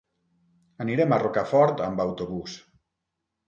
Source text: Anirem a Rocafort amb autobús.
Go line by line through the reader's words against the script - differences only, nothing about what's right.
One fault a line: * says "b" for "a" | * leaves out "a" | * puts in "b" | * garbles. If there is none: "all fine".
all fine